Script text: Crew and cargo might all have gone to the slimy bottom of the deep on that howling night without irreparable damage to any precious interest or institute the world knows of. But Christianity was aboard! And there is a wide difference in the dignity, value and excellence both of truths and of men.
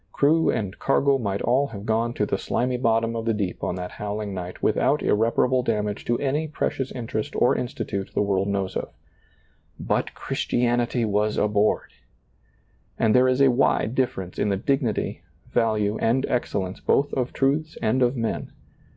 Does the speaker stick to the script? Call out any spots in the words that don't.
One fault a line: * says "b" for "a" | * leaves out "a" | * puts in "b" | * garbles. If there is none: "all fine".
all fine